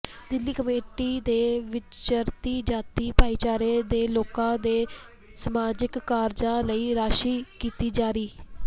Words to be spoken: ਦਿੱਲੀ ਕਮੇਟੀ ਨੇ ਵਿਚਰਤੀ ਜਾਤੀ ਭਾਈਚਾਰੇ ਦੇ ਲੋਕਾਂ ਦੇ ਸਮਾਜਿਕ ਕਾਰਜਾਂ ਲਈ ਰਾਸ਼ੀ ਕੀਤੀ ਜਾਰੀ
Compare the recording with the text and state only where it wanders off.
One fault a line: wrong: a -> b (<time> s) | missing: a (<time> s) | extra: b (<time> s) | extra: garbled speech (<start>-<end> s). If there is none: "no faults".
no faults